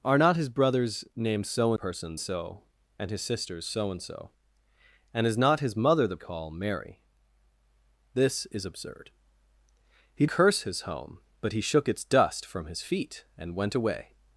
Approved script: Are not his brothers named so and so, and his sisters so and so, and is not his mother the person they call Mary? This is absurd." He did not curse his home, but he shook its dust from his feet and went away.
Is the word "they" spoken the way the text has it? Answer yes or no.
no